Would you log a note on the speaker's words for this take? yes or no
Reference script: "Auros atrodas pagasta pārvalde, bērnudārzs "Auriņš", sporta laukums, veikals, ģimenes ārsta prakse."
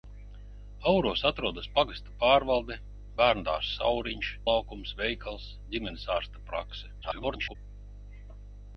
yes